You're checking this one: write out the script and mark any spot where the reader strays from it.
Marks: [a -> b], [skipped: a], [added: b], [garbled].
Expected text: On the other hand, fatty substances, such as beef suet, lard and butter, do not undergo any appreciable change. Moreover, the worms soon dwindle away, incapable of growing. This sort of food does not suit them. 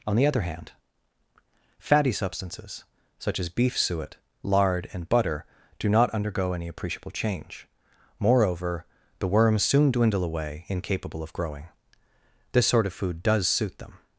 On the other hand, fatty substances, such as beef suet, lard and butter, do not undergo any appreciable change. Moreover, the worms soon dwindle away, incapable of growing. This sort of food does [skipped: not] suit them.